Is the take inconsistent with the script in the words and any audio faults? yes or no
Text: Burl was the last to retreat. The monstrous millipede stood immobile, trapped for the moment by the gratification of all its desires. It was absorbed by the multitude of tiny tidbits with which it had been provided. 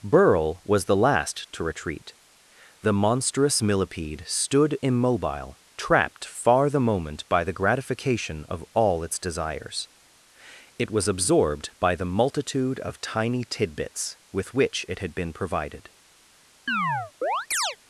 yes